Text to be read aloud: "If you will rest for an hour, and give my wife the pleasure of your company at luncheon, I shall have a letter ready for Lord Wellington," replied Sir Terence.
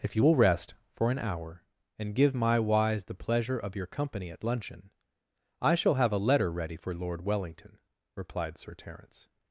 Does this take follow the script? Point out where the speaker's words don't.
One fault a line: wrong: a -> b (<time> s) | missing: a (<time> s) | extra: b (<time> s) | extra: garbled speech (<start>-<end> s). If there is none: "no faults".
wrong: wife -> wise (2.6 s)